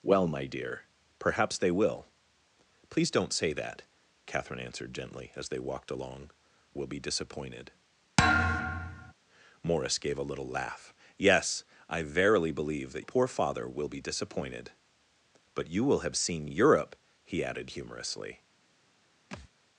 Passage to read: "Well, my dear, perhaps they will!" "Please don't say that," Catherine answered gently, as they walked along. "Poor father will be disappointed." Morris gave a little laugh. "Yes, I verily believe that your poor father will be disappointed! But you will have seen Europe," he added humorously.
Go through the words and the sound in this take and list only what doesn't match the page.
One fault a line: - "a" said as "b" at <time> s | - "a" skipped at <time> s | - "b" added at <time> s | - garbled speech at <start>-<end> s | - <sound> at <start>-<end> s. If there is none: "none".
- "Poor father" skipped at 6.3 s
- thud at 8.2-9.1 s
- "your" skipped at 13.1 s
- thud at 19.3-19.5 s